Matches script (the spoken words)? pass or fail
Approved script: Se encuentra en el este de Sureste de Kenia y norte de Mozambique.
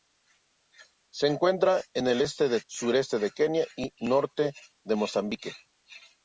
pass